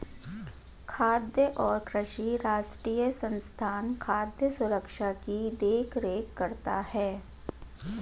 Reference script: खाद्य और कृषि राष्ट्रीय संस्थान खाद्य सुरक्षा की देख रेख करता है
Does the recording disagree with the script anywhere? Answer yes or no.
no